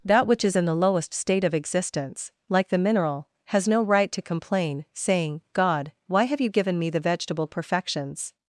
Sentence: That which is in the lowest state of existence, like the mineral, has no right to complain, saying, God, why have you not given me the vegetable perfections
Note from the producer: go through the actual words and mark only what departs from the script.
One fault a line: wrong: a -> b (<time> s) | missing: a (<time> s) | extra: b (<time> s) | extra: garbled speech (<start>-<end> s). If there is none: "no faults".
missing: not (6.5 s)